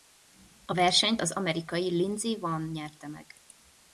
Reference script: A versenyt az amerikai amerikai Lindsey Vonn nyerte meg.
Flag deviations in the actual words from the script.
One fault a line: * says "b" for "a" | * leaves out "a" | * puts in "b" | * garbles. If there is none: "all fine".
* leaves out "amerikai"